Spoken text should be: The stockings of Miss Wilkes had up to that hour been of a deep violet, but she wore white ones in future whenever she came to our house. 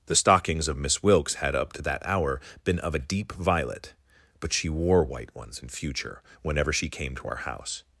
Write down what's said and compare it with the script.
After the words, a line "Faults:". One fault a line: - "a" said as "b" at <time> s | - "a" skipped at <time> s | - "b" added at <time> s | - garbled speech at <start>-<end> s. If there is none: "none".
The stockings of Miss Wilkes had up to that hour been of a deep violet, but she wore white ones in future whenever she came to our house.
Faults:
none